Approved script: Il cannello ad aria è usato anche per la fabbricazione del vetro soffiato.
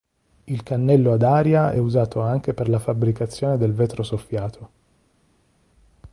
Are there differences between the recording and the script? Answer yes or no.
yes